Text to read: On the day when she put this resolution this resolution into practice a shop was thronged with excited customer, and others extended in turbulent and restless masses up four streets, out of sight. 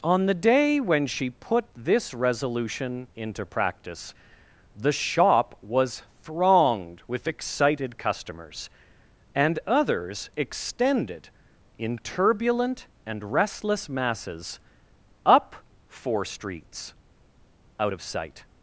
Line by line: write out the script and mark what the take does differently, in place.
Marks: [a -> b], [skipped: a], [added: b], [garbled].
On the day when she put this resolution [skipped: this resolution] into practice [a -> the] shop was thronged with excited [customer, -> customers] and others extended in turbulent and restless masses up four streets, out of sight.